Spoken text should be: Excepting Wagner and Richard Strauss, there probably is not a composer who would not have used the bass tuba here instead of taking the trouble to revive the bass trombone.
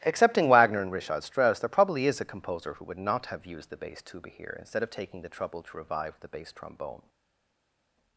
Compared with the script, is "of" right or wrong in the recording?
right